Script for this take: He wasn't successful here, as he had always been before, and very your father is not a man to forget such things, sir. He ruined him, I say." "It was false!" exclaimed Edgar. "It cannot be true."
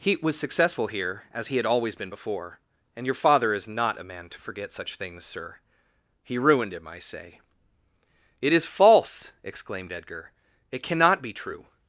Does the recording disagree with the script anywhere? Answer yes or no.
yes